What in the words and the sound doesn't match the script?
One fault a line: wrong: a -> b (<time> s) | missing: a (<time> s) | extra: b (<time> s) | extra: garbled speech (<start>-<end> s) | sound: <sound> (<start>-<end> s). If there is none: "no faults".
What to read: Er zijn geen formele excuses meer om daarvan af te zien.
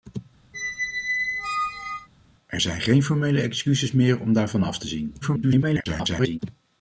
sound: squeak (0.5-2.1 s)
extra: garbled speech (5.2-6.4 s)